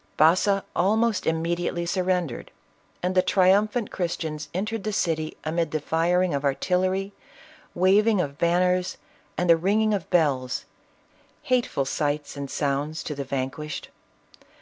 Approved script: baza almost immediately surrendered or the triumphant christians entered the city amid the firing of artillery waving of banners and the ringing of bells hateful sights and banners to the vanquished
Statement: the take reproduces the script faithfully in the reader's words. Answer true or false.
false